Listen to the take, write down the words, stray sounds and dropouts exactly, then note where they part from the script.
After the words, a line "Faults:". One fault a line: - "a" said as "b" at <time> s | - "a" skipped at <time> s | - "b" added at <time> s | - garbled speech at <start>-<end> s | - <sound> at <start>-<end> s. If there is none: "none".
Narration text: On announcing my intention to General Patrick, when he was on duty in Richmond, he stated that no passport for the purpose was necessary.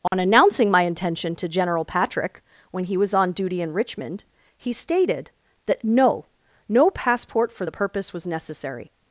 On announcing my intention to General Patrick, when he was on duty in Richmond, he stated that no no passport for the purpose was necessary.
Faults:
- dropout at 0.1-0.1 s
- "no" added at 6.7 s